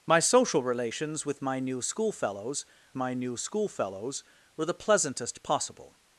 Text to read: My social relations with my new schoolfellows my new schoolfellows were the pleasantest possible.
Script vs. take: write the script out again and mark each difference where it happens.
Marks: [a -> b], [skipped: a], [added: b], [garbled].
My social relations with my new schoolfellows my new schoolfellows were the pleasantest possible.